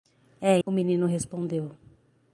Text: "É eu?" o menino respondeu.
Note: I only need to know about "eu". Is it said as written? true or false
false